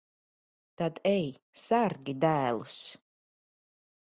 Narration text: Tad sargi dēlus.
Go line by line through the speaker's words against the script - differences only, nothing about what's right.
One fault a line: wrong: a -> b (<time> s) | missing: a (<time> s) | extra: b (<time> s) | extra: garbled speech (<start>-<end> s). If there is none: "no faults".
extra: ej (1.1 s)